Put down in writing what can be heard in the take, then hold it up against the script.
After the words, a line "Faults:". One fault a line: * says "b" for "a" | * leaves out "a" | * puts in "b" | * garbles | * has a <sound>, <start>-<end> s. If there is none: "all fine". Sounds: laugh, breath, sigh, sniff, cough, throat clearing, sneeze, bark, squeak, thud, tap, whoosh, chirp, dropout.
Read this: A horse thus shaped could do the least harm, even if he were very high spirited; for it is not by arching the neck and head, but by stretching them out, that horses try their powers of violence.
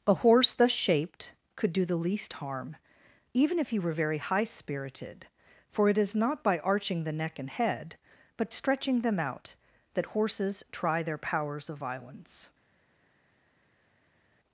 A horse thus shaped could do the least harm, even if he were very high spirited; for it is not by arching the neck and head, but stretching them out, that horses try their powers of violence.
Faults:
* leaves out "by"